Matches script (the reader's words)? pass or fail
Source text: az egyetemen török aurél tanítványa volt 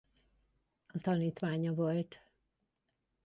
fail